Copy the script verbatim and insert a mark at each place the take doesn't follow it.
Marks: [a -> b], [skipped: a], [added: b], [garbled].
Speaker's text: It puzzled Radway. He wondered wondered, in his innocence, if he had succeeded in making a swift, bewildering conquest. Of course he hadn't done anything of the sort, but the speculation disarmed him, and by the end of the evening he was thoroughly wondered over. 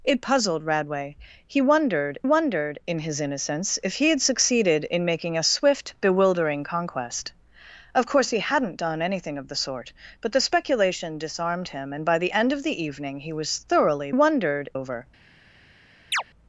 It puzzled Radway. He wondered wondered, in his innocence, if he had succeeded in making a swift, bewildering conquest. Of course he hadn't done anything of the sort, but the speculation disarmed him, and by the end of the evening he was thoroughly wondered over.